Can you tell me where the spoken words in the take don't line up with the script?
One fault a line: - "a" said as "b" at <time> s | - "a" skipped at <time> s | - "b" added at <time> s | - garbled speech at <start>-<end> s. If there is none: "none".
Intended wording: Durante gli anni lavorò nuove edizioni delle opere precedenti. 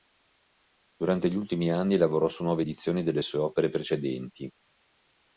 - "ultimi" added at 1.4 s
- "su" added at 2.3 s
- "sue" added at 3.2 s